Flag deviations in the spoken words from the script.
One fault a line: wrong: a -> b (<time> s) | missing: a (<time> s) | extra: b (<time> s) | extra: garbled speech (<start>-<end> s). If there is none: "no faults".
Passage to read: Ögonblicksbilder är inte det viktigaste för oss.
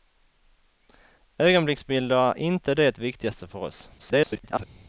extra: garbled speech (4.0-4.6 s)